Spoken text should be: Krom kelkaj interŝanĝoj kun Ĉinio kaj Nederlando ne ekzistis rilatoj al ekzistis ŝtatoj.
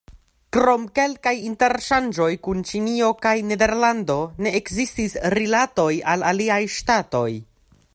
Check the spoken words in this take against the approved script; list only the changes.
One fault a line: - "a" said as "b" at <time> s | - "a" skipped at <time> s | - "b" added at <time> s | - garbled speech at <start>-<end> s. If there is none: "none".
- "ekzistis" said as "aliaj" at 6.3 s